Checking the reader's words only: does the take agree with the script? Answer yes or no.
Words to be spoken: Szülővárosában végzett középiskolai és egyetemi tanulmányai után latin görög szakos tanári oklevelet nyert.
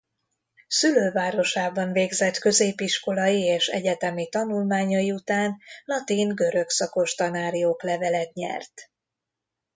yes